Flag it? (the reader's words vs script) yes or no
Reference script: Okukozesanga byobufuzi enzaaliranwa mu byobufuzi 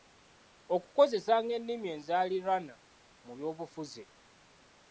yes